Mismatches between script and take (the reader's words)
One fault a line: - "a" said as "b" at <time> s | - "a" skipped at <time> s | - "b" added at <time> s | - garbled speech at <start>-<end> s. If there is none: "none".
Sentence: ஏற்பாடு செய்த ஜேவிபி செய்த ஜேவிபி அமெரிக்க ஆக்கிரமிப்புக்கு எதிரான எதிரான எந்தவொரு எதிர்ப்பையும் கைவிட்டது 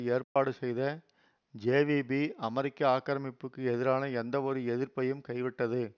- "செய்த ஜேவிபி" skipped at 2.2 s
- "எதிரான" skipped at 4.0 s